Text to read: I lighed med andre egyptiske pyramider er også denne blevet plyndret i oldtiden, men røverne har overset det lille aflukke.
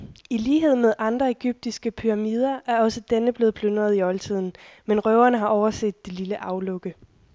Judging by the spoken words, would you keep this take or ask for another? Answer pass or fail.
pass